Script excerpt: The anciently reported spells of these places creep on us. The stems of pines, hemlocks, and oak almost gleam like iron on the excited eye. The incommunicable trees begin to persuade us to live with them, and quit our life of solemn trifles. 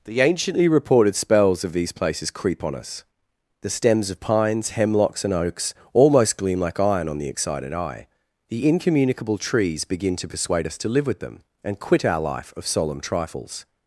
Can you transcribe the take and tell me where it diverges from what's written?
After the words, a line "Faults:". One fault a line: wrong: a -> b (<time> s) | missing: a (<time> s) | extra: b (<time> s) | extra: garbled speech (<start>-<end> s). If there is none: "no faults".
The anciently reported spells of these places creep on us. The stems of pines, hemlocks, and oaks almost gleam like iron on the excited eye. The incommunicable trees begin to persuade us to live with them, and quit our life of solemn trifles.
Faults:
wrong: oak -> oaks (5.3 s)